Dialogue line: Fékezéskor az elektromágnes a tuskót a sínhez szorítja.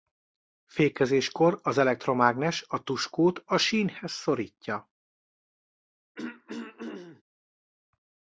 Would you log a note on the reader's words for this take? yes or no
no